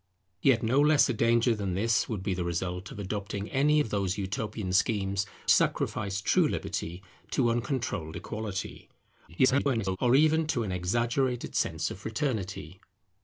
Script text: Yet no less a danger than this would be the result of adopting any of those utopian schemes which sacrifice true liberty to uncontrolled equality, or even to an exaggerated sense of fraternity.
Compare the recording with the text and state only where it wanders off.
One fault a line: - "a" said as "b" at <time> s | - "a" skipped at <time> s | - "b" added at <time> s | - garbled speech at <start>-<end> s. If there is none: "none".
- "which" skipped at 5.3 s
- garbled speech at 9.3-10.0 s